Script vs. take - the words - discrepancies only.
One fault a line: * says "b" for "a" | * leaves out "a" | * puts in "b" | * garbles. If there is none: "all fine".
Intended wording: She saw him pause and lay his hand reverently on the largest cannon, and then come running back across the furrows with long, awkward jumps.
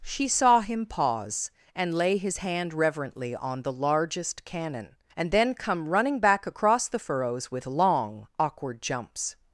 all fine